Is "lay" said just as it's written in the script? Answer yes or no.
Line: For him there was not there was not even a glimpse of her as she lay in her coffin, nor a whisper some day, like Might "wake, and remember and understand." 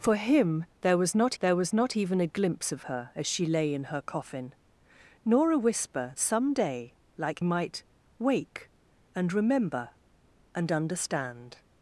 yes